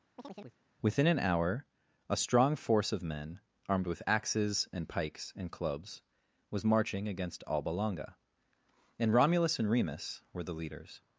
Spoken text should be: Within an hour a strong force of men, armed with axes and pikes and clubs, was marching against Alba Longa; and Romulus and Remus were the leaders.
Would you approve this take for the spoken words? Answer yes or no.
yes